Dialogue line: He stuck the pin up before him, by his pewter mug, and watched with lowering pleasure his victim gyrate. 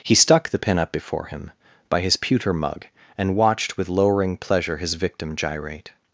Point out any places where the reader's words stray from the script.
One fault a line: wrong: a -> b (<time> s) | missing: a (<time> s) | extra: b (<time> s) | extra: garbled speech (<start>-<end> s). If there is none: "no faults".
no faults